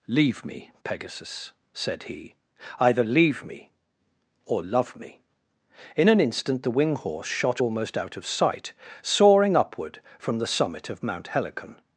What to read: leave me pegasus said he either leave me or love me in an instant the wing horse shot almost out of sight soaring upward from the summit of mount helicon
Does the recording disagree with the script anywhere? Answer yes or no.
no